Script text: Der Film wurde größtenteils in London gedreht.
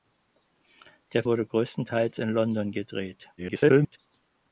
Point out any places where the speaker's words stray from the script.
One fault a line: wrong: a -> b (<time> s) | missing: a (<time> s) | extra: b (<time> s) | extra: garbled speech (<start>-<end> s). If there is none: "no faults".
missing: Film (1.2 s)
extra: garbled speech (3.4-4.0 s)